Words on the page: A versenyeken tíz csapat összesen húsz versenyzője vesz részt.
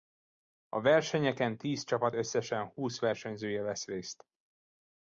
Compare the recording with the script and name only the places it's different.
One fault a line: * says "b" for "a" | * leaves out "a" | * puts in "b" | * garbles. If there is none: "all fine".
all fine